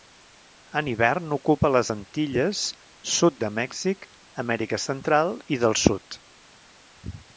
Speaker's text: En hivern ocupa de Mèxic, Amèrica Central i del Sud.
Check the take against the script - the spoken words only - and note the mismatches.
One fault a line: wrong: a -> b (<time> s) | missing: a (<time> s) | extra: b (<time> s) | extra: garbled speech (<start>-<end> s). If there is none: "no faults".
extra: les Antilles sud (1.7 s)